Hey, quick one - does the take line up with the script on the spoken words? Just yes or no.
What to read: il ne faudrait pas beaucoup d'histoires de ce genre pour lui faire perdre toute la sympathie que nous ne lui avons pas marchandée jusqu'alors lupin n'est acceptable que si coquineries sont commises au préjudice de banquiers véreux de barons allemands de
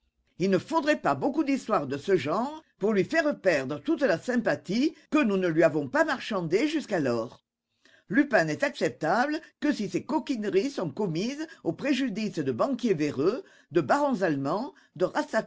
no